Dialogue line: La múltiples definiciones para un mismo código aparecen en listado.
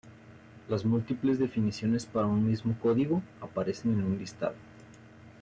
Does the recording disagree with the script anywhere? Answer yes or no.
yes